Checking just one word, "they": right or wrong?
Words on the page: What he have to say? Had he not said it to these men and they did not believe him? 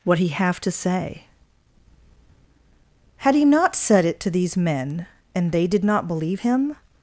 right